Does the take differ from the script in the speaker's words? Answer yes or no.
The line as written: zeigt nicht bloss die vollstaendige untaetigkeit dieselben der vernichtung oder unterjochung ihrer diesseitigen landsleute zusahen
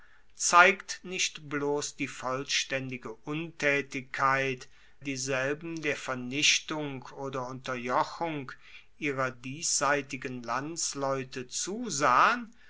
no